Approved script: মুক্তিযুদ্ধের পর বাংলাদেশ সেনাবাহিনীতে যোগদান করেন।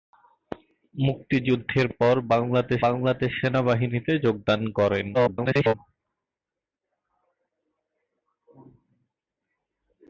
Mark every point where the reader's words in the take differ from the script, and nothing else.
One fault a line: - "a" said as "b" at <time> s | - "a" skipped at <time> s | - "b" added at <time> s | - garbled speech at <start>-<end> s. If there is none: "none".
- "বাংলাদেশ" added at 2.9 s
- garbled speech at 5.1-5.7 s